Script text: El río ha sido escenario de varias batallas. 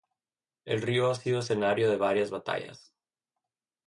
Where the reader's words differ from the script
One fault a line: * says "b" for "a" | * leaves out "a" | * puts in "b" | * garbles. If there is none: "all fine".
all fine